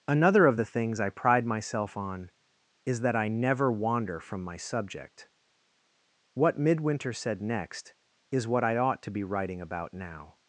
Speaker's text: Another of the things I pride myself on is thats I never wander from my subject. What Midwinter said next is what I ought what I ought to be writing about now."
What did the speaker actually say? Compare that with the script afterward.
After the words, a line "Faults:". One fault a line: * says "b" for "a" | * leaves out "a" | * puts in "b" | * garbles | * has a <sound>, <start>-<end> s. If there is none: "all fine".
Another of the things I pride myself on is that I never wander from my subject. What Midwinter said next is what I ought to be writing about now."
Faults:
* says "that" for "thats"
* leaves out "what I ought"